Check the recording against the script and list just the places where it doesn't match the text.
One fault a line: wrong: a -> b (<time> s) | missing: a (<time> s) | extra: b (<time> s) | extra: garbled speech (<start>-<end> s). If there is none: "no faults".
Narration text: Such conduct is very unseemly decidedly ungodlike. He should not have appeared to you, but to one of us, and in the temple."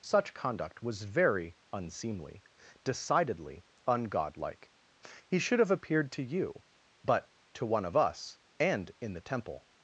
wrong: is -> was (0.8 s)
missing: not (5.6 s)